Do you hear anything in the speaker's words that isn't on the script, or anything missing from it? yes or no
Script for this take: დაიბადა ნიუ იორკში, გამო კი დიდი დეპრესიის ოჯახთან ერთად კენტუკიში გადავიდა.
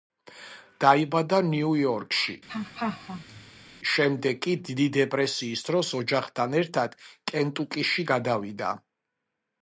yes